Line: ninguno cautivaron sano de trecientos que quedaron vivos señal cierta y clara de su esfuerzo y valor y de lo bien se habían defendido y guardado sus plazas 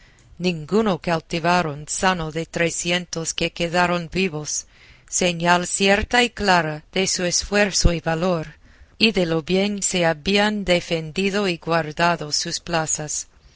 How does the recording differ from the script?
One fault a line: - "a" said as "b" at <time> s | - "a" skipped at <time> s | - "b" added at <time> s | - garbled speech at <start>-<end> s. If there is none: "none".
none